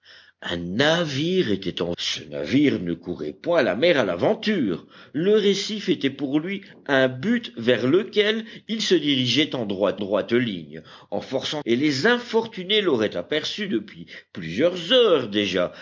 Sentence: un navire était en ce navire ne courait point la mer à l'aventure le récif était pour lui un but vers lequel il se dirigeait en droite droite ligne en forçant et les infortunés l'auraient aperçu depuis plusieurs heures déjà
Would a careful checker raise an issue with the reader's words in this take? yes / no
no